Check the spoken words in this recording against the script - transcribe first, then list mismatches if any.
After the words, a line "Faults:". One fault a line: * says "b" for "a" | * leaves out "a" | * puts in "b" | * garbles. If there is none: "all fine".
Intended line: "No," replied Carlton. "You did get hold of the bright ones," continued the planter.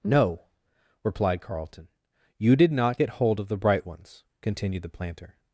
"No," replied Carlton. "You did not get hold of the bright ones," continued the planter.
Faults:
* puts in "not"